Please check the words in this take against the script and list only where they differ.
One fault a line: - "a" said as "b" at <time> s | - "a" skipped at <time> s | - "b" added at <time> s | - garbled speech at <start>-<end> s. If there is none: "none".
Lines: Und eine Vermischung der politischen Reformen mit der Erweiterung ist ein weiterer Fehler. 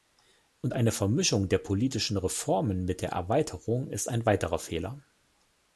none